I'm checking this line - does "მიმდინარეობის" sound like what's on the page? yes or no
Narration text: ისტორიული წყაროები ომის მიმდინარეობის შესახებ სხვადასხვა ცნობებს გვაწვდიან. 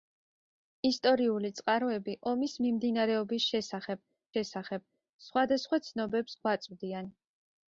yes